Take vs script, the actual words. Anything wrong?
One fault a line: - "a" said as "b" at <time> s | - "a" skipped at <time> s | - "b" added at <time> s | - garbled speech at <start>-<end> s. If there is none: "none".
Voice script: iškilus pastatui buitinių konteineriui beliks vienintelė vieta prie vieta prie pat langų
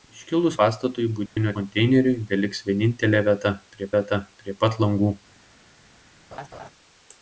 none